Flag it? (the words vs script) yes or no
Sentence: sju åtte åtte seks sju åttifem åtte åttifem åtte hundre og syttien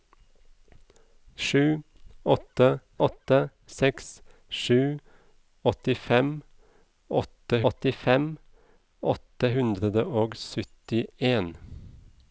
no